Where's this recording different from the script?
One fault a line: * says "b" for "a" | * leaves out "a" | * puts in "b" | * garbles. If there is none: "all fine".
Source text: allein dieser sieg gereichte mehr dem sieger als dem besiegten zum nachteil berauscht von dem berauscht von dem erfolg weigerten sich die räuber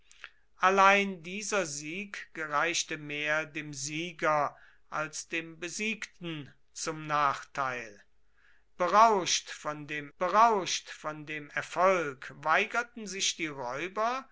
all fine